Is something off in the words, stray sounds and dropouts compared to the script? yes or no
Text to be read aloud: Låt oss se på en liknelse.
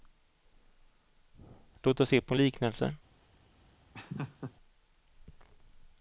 yes